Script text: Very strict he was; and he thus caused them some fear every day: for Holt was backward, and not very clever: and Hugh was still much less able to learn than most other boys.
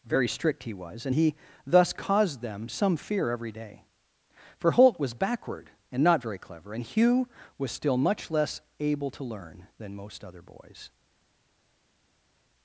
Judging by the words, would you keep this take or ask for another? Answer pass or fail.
pass